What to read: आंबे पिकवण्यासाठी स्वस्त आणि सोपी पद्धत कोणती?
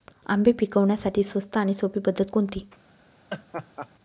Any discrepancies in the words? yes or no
no